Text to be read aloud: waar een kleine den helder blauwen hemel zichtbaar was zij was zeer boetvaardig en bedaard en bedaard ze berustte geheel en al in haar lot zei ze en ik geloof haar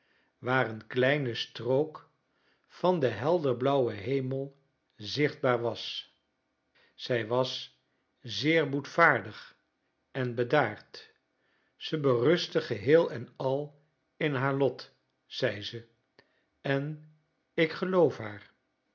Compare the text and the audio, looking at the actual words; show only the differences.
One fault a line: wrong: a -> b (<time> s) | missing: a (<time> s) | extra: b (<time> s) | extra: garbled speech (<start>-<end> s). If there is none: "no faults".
extra: strook van (1.3 s)
missing: en bedaard (11.1 s)